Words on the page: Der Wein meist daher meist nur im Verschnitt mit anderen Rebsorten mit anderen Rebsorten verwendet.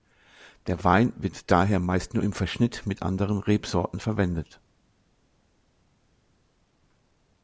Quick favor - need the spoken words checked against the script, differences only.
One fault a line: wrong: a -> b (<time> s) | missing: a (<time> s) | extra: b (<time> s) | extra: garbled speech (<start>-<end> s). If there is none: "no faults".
wrong: meist -> wird (1.1 s)
missing: mit anderen Rebsorten (4.0 s)